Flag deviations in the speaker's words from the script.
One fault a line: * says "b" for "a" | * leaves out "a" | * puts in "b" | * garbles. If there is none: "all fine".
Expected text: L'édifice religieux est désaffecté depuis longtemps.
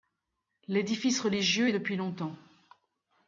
* leaves out "désaffecté"